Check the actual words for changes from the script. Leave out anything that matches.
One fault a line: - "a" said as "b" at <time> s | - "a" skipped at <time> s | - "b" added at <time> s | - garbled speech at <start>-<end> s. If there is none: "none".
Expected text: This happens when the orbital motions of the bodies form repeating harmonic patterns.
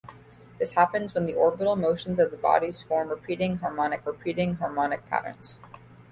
- "repeating harmonic" added at 4.1 s